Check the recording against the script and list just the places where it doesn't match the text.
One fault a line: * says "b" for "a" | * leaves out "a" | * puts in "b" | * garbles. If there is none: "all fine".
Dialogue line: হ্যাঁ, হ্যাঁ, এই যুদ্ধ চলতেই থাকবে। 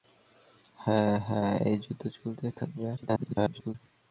* garbles